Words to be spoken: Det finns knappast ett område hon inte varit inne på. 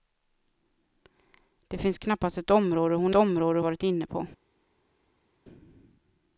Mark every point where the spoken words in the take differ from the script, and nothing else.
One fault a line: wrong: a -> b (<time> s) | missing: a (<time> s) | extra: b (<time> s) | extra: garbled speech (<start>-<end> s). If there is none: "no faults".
wrong: inte -> område (3.1 s)